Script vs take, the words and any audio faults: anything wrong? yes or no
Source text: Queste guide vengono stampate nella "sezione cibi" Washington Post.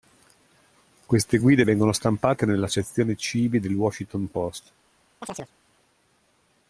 yes